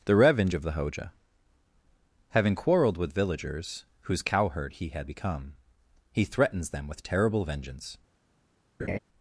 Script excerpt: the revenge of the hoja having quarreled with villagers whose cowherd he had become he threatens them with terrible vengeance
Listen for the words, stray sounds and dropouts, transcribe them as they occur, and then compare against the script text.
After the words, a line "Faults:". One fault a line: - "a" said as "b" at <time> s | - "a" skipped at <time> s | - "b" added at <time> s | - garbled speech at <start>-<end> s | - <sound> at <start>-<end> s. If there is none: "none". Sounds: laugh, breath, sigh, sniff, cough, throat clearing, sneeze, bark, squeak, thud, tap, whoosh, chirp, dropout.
the revenge of the hoja having quarreled with villagers whose cowherd he had become he threatens them with terrible vengeance
Faults:
- laugh at 8.8-9.0 s